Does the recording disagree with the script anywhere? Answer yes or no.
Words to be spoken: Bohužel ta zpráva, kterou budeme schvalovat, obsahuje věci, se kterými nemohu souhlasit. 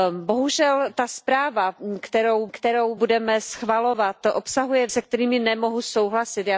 yes